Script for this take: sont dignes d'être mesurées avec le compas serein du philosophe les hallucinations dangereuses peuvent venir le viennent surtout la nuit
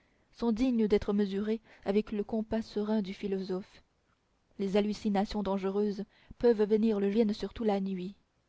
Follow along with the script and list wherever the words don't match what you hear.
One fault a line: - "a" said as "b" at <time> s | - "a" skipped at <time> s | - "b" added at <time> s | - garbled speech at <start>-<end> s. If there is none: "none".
none